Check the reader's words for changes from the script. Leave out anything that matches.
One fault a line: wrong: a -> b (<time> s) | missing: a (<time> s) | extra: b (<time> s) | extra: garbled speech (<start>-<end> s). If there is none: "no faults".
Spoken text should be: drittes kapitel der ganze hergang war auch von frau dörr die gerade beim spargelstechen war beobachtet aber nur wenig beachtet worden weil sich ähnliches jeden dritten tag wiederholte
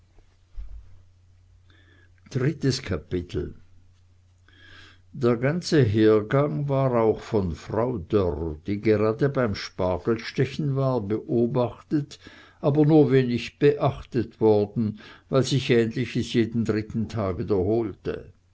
no faults